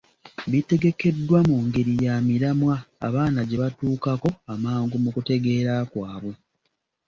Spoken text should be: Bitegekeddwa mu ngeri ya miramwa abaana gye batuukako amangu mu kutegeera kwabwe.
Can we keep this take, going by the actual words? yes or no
yes